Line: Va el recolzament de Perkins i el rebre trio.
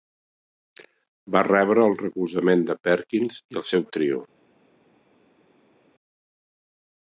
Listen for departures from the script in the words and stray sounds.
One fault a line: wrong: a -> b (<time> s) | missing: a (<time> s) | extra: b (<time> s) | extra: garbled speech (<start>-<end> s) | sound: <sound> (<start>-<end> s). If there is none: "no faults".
extra: rebre (1.5 s)
wrong: rebre -> seu (3.7 s)